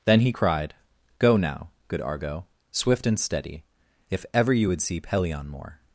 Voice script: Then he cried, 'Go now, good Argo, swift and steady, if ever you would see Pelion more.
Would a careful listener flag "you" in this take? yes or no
no